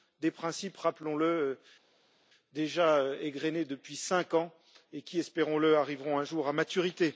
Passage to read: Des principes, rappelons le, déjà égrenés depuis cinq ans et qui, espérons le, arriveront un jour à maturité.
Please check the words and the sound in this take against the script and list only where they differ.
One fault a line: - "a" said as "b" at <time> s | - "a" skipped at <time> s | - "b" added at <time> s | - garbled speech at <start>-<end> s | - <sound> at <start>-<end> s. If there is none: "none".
none